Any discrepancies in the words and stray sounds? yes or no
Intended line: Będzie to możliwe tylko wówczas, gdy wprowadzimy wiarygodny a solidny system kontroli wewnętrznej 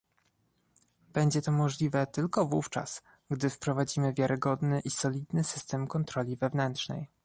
yes